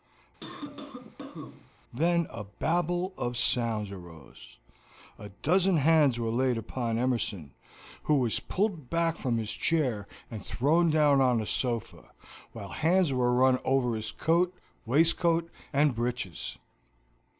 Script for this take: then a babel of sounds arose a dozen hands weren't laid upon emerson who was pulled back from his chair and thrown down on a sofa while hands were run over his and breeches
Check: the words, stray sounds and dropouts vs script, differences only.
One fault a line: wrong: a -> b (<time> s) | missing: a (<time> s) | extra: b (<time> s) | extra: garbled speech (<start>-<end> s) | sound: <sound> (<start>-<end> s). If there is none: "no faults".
sound: cough (0.4-1.7 s)
wrong: weren't -> were (6.2 s)
extra: coat waistcoat (14.1 s)